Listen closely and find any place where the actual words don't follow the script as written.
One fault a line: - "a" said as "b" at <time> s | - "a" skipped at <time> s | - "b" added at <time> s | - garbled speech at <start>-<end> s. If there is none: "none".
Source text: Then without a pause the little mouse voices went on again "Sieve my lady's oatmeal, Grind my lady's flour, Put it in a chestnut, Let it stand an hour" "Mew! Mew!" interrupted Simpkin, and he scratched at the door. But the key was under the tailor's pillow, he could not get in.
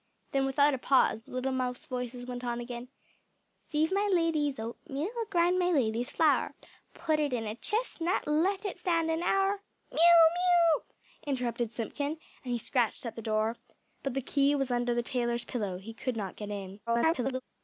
- garbled speech at 16.9-17.4 s